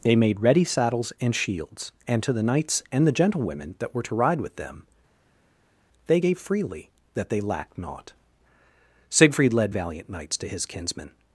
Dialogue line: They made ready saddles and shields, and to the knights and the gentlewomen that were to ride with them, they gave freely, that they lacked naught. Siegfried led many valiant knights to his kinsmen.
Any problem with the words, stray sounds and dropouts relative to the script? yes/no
yes